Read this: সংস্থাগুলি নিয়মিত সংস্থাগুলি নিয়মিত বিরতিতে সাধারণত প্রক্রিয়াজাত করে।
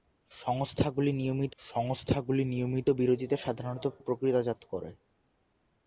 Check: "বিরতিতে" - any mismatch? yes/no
no